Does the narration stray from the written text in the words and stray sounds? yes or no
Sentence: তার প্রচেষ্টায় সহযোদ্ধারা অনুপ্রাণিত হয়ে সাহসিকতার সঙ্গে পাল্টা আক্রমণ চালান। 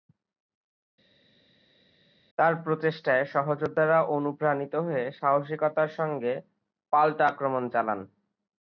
no